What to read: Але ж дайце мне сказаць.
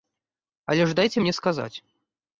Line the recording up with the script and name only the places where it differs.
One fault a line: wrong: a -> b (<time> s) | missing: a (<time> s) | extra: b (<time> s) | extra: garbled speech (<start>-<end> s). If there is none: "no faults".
no faults